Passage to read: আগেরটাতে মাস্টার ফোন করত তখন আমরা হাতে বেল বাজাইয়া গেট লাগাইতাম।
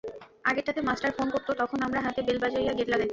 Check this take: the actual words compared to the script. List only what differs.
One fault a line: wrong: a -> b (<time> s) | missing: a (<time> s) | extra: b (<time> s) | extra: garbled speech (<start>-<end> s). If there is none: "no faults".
no faults